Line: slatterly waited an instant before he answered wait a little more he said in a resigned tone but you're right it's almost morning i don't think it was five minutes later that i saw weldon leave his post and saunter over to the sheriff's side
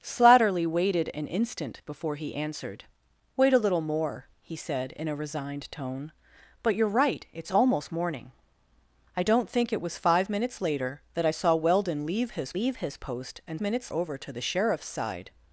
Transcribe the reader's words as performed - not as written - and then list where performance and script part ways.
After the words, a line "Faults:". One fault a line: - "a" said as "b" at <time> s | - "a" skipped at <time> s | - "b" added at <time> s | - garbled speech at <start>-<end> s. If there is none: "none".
slatterly waited an instant before he answered wait a little more he said in a resigned tone but you're right it's almost morning i don't think it was five minutes later that i saw weldon leave his leave his post and minutes over to the sheriff's side
Faults:
- "leave his" added at 12.5 s
- "saunter" said as "minutes" at 13.6 s